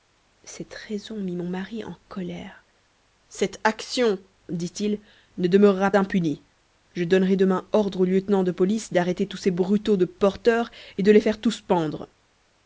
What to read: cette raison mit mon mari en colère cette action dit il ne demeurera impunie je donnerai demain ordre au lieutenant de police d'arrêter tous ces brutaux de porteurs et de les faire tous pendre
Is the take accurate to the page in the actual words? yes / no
yes